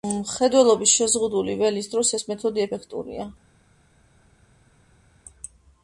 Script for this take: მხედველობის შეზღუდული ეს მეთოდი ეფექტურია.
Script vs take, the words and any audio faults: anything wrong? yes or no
yes